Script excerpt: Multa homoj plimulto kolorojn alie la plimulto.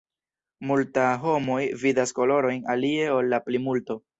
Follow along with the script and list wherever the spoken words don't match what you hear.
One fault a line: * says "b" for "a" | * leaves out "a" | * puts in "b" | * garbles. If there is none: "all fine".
* says "vidas" for "plimulto"
* puts in "ol"